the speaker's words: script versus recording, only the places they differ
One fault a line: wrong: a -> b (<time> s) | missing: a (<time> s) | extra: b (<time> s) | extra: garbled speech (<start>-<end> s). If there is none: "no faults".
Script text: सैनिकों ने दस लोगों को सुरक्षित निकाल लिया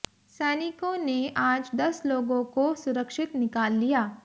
extra: आज (1.4 s)